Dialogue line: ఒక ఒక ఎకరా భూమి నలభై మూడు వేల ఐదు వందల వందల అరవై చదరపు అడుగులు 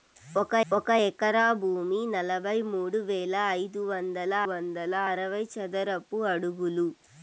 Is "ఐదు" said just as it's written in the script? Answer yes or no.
yes